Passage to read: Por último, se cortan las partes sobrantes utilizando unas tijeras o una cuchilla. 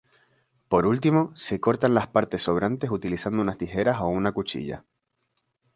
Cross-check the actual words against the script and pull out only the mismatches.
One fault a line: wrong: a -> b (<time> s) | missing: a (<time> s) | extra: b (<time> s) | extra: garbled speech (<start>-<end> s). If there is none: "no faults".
no faults